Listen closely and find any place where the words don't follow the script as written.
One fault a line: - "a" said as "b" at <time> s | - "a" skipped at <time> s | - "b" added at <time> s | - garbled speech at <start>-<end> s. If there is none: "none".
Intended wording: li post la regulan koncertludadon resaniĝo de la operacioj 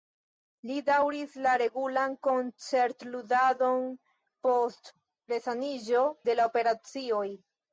- "post" said as "daŭris" at 0.8 s
- "post" added at 4.5 s